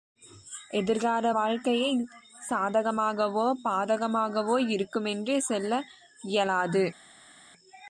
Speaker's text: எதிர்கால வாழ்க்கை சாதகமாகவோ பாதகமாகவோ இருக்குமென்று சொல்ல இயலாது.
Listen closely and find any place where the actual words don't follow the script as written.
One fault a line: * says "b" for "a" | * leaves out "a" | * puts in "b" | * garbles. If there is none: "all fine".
all fine